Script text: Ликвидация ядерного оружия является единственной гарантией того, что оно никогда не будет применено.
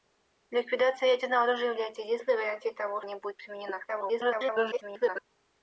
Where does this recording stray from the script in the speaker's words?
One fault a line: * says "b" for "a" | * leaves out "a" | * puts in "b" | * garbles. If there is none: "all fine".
* leaves out "что оно никогда"
* garbles